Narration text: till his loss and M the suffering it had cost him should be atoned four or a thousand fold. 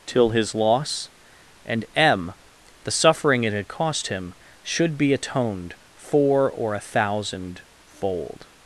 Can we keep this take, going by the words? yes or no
yes